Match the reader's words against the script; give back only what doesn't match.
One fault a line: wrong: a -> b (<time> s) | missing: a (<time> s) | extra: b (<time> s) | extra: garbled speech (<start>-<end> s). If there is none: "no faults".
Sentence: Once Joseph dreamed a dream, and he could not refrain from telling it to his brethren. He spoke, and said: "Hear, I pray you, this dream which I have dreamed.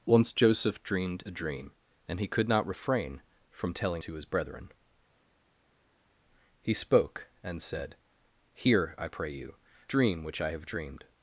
missing: it (4.0 s)
missing: this (9.6 s)